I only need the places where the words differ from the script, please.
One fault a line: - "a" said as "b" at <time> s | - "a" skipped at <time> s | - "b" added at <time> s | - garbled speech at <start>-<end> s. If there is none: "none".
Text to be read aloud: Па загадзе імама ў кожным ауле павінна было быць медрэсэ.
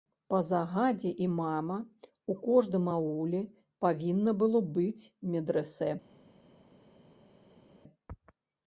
none